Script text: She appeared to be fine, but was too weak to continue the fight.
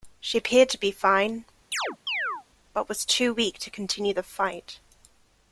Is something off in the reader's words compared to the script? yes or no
no